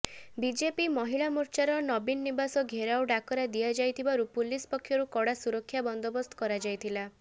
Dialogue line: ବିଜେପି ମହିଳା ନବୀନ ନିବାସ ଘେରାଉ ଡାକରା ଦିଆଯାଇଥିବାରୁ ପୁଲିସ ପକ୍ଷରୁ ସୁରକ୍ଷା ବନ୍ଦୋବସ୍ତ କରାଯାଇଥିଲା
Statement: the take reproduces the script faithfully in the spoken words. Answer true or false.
false